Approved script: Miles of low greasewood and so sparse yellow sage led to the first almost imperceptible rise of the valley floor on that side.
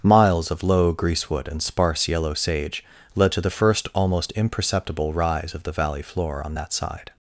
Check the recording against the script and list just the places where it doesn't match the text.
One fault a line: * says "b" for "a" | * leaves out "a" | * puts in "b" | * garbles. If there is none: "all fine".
* leaves out "so"